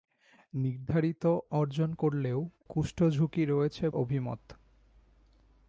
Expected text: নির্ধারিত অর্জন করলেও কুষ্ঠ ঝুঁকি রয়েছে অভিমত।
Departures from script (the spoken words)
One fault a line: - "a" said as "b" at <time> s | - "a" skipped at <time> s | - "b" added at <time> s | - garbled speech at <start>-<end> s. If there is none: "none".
none